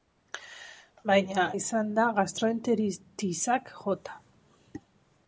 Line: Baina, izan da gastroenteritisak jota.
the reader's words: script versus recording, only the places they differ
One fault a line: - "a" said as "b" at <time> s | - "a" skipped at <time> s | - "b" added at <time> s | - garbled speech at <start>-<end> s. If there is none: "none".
none